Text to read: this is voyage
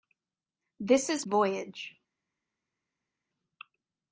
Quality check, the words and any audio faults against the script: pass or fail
pass